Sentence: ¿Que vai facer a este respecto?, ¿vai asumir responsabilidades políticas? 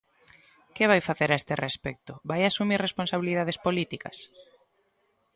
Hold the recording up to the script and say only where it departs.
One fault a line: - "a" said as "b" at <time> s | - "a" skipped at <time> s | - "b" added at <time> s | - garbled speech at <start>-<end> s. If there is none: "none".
none